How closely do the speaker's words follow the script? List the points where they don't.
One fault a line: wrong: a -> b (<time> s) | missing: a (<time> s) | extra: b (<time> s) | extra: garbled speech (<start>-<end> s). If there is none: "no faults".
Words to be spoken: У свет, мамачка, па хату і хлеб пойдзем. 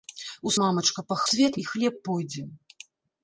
missing: свет (0.5 s)
wrong: хату -> свет (1.3 s)